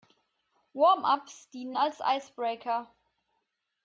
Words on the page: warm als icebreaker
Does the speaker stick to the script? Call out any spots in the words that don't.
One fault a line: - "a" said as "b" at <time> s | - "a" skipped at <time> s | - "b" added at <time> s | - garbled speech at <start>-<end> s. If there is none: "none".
- "ups dienen" added at 1.0 s